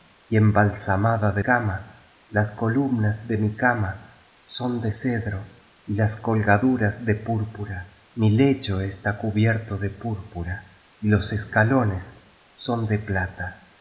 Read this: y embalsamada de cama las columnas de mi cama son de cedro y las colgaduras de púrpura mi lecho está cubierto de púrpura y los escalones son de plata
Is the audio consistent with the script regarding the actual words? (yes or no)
yes